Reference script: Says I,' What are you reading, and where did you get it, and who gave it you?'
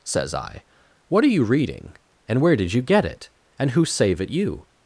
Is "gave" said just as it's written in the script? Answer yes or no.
no